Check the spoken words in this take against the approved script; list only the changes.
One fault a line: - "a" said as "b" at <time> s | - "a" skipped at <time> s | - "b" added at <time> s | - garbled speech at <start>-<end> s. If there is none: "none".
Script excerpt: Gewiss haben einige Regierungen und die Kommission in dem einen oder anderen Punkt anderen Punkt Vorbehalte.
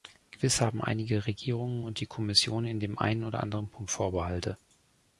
- "anderen Punkt" skipped at 3.9 s